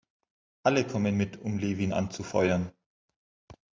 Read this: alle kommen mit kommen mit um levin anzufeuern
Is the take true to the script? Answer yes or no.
no